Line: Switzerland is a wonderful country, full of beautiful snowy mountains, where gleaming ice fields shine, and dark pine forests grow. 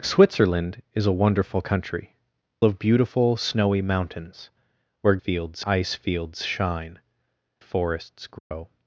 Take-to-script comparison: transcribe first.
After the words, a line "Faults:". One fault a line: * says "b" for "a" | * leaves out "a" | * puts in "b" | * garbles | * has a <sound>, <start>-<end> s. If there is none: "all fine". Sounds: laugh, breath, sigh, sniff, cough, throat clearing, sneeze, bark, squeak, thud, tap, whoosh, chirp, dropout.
Switzerland is a wonderful country, of beautiful snowy mountains, where fields ice fields shine, forests grow.
Faults:
* leaves out "full"
* says "fields" for "gleaming"
* leaves out "and dark pine"
* has a dropout, 8.4-8.5 s